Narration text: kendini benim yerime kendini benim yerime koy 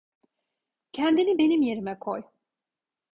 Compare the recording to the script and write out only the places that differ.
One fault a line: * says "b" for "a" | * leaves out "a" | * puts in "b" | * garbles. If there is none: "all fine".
* leaves out "kendini benim yerime"